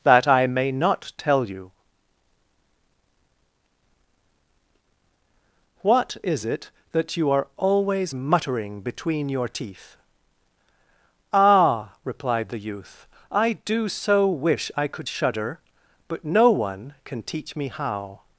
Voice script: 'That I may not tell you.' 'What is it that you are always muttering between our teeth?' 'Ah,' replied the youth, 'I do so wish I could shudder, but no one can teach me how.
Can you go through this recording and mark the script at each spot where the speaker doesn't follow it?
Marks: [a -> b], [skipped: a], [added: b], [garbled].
'That I may not tell you.' 'What is it that you are always muttering between [our -> your] teeth?' 'Ah,' replied the youth, 'I do so wish I could shudder, but no one can teach me how.